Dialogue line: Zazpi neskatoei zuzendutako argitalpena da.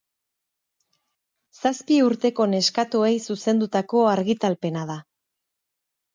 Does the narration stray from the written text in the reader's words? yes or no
yes